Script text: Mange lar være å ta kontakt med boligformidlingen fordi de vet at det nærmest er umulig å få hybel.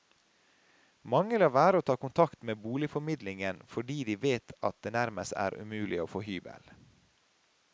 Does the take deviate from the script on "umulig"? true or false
false